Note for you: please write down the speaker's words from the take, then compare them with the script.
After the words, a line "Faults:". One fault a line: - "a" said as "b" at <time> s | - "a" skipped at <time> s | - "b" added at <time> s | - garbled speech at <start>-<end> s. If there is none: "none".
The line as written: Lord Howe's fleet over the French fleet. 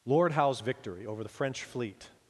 Lord Howe's victory over the French fleet.
Faults:
- "fleet" said as "victory" at 0.6 s